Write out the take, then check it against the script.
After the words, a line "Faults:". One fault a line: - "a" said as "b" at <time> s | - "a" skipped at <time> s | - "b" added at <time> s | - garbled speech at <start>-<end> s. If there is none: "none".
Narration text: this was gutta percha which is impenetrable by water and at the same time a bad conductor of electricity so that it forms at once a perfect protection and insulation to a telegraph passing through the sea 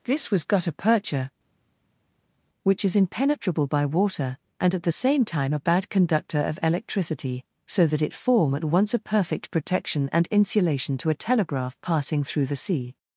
this was gutta percha which is impenetrable by water and at the same time a bad conductor of electricity so that it form at once a perfect protection and insulation to a telegraph passing through the sea
Faults:
- "forms" said as "form" at 8.1 s